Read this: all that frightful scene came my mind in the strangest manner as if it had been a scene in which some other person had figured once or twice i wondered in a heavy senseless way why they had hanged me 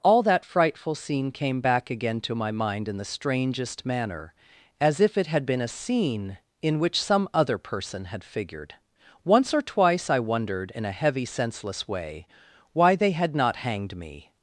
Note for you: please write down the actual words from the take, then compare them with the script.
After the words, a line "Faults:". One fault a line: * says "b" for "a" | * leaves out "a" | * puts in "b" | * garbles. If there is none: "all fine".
all that frightful scene came back again to my mind in the strangest manner as if it had been a scene in which some other person had figured once or twice i wondered in a heavy senseless way why they had not hanged me
Faults:
* puts in "back again to"
* puts in "not"